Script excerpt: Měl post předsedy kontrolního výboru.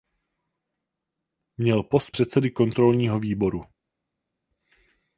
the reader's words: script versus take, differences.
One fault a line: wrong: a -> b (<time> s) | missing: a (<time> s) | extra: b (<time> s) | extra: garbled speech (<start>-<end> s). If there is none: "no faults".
no faults